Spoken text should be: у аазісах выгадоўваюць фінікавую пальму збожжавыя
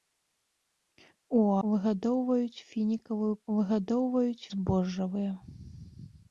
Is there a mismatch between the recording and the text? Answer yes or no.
yes